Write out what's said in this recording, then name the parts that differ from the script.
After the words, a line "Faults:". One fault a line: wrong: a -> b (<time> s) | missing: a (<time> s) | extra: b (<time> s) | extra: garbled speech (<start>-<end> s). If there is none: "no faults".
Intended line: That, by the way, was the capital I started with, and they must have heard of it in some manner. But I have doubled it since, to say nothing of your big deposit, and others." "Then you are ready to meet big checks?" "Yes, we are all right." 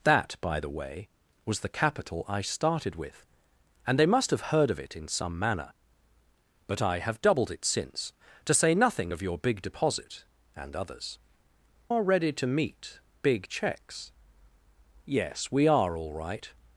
That, by the way, was the capital I started with, and they must have heard of it in some manner. But I have doubled it since, to say nothing of your big deposit, and others." "Are ready to meet big checks?" "Yes, we are all right."
Faults:
missing: Then you (11.2 s)